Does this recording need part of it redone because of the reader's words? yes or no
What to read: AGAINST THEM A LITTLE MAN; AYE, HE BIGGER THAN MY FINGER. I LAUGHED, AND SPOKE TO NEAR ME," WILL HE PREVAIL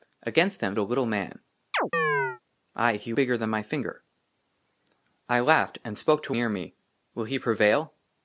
no